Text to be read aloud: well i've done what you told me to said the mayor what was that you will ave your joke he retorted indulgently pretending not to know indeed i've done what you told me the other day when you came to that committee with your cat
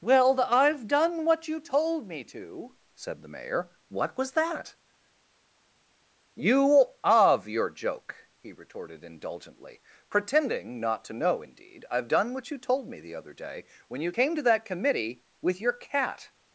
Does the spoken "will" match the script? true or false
false